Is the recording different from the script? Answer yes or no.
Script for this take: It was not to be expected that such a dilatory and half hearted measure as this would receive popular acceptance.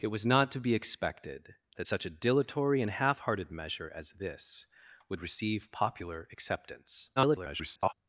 yes